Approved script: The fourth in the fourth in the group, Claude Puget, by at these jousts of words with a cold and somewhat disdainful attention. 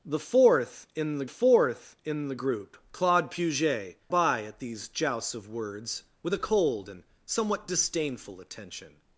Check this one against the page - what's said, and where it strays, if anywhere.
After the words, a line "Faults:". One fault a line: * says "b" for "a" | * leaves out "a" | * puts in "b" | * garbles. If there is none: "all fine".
The fourth in the fourth in the group, Claude Puget, by at these jousts of words with a cold and somewhat disdainful attention.
Faults:
all fine